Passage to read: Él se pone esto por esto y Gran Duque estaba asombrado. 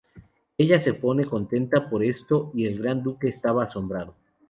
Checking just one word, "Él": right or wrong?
wrong